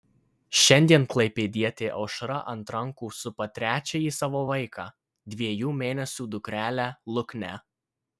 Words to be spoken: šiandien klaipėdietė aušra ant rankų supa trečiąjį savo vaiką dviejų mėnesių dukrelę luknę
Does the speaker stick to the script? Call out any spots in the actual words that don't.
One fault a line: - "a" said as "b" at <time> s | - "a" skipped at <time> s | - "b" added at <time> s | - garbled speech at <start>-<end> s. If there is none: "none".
none